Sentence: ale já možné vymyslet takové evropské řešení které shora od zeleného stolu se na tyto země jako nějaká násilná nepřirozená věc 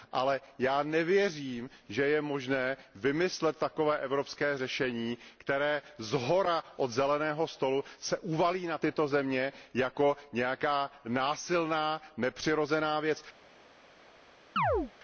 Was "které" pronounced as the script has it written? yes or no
yes